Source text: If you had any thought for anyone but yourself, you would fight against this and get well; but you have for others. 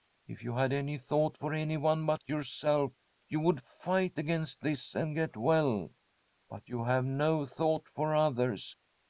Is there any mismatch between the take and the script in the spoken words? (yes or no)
yes